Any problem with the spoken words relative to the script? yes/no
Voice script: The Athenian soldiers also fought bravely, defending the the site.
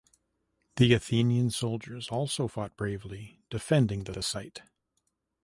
no